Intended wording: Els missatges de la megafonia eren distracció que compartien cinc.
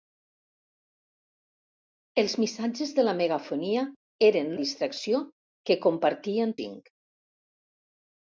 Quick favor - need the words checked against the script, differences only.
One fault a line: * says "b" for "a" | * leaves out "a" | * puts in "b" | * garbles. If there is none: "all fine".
all fine